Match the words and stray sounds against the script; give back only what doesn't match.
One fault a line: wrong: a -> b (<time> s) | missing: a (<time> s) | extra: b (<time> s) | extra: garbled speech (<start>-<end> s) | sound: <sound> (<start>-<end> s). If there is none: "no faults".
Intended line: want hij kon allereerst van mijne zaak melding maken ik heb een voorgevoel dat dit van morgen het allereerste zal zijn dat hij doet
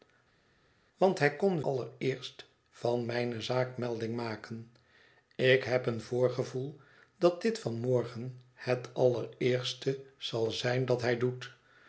no faults